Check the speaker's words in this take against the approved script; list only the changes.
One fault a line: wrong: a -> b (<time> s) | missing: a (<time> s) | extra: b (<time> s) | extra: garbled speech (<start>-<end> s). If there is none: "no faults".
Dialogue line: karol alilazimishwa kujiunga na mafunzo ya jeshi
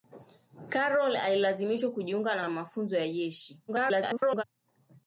extra: na (2.4 s)
extra: garbled speech (3.7-4.4 s)